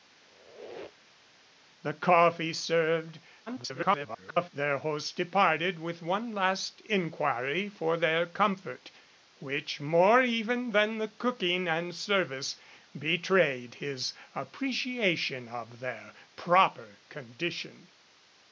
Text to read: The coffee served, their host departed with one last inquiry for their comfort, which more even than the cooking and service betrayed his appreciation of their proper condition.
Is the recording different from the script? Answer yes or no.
yes